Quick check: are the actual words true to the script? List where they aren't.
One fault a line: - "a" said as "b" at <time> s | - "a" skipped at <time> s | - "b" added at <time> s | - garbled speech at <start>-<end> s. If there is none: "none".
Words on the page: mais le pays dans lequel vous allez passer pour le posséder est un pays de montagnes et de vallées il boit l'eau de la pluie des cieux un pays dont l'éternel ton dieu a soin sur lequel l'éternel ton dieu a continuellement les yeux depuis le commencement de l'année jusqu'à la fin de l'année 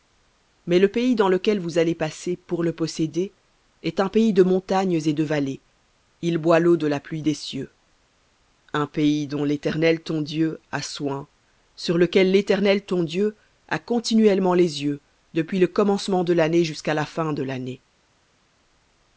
none